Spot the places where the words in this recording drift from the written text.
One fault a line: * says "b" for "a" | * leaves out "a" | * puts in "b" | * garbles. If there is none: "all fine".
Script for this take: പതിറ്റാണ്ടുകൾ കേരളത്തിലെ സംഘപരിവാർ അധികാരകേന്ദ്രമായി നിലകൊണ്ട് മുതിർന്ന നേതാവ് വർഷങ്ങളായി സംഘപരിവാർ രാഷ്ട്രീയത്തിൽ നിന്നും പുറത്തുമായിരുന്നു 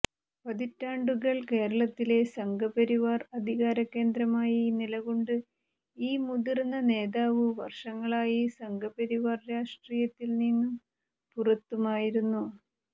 * puts in "ഈ"